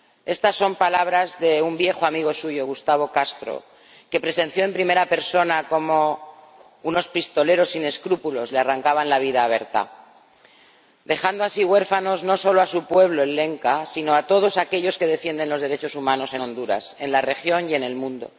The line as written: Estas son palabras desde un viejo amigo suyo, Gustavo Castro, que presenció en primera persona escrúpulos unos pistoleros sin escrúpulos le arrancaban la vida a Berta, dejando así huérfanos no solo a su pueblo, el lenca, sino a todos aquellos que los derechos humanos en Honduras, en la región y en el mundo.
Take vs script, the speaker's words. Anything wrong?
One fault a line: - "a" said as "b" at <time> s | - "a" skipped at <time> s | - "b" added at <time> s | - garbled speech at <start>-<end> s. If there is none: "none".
- "desde" said as "de" at 1.4 s
- "escrúpulos" said as "cómo" at 5.7 s
- "defienden" added at 15.1 s